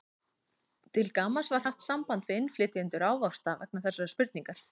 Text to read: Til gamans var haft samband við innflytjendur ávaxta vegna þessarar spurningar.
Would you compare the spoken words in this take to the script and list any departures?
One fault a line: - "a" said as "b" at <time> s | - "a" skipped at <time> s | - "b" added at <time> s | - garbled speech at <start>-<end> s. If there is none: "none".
none